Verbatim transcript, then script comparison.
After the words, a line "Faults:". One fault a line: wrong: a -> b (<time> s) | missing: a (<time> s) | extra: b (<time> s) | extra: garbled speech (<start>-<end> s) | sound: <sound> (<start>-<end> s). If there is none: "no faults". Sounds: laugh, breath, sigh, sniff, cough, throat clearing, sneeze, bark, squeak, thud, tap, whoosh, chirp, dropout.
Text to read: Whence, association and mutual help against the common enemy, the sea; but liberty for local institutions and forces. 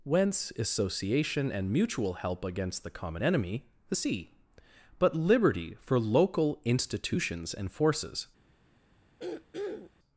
Whence, association and mutual help against the common enemy, the sea; but liberty for local institutions and forces.
Faults:
sound: throat clearing (9.2-9.9 s)